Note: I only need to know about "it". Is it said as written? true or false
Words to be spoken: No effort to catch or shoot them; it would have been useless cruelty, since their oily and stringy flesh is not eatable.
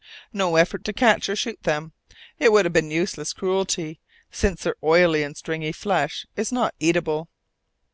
true